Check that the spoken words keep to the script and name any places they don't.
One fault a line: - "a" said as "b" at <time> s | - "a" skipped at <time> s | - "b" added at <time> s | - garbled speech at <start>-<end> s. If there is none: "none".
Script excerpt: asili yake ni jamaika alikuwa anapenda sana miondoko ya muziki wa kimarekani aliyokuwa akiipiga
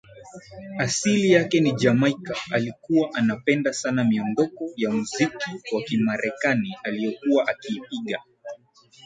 none